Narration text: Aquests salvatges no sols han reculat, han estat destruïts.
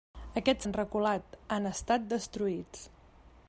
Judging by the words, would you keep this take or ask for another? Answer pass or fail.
fail